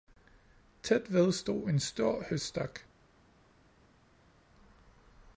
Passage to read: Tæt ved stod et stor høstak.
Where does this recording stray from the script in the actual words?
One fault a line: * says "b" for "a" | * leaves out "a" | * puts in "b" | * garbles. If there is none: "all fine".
* says "en" for "et"